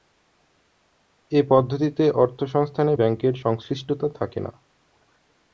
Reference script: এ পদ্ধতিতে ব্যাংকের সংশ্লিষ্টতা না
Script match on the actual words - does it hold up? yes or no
no